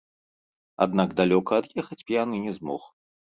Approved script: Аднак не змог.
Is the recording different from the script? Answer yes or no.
yes